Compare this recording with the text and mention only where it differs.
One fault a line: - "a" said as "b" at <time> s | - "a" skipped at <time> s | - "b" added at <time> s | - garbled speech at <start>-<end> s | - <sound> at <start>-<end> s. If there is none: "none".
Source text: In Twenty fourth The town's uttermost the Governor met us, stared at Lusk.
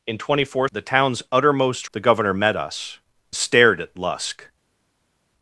none